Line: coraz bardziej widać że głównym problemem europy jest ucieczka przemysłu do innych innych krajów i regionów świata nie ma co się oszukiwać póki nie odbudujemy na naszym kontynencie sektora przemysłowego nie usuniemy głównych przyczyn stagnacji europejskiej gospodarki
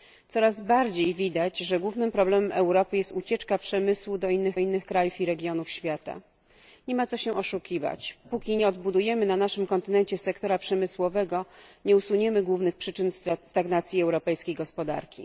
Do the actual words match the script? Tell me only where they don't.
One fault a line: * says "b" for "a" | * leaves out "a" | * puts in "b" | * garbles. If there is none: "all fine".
all fine